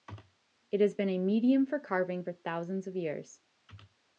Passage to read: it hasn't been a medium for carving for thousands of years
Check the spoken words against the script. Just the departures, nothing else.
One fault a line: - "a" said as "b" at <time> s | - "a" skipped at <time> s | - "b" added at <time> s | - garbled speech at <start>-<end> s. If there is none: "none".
- "hasn't" said as "has" at 0.8 s